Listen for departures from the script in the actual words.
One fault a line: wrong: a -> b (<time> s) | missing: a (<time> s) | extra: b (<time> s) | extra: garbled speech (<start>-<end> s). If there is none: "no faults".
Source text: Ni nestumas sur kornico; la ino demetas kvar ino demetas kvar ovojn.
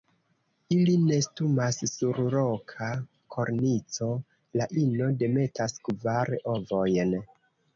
wrong: Ni -> Ili (0.8 s)
extra: roka (2.4 s)
missing: ino demetas kvar (6.3 s)